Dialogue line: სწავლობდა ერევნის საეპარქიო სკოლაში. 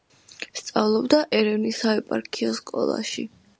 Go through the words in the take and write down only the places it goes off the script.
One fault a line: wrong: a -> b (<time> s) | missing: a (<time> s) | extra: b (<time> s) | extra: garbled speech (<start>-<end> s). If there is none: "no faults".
no faults